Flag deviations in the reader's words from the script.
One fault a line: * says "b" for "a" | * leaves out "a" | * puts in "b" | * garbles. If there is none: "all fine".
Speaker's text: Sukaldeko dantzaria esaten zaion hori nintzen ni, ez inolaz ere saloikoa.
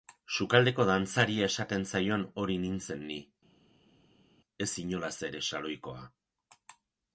all fine